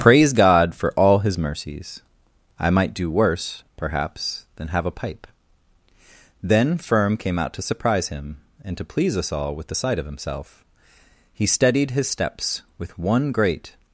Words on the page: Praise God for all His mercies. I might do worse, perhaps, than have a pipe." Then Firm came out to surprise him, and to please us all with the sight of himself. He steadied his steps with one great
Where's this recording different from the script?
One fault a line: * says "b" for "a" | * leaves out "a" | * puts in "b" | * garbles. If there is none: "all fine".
all fine